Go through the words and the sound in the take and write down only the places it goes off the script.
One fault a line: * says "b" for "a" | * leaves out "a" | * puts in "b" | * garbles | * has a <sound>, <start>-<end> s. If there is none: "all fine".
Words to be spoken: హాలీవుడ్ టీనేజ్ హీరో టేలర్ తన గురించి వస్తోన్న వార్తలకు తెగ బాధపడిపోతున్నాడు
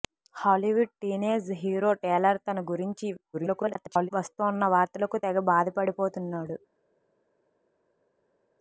* garbles